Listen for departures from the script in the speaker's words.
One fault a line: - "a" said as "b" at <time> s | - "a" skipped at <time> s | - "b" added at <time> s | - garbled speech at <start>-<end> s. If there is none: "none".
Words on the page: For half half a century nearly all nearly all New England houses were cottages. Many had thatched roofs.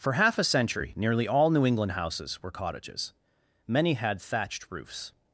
- "half" skipped at 0.4 s
- "nearly all" skipped at 1.5 s